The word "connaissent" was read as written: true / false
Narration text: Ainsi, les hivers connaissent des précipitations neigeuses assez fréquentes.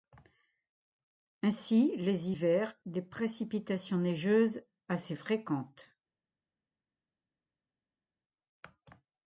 false